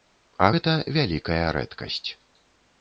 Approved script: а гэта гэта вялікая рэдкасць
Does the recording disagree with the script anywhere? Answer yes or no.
yes